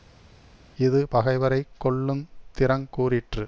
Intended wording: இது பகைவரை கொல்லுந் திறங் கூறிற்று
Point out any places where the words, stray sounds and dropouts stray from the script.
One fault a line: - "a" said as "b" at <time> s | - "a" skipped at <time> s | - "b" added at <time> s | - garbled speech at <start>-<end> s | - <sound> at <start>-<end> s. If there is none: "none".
none